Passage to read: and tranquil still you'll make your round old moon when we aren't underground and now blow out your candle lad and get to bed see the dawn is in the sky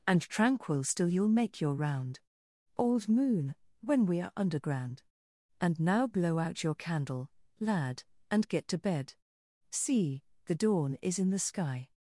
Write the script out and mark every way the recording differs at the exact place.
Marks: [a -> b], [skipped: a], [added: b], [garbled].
and tranquil still you'll make your round old moon when we [aren't -> are] underground and now blow out your candle lad and get to bed see the dawn is in the sky